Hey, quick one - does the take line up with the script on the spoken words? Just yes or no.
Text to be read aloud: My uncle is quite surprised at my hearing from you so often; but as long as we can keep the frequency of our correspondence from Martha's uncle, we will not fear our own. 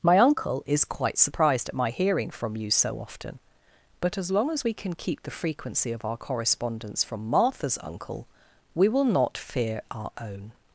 yes